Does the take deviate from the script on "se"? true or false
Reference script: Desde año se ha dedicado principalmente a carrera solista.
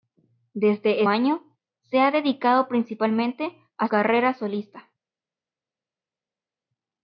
false